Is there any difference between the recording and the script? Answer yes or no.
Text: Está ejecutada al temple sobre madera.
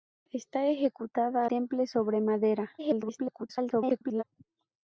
yes